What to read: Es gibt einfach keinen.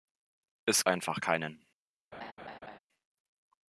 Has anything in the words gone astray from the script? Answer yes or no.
yes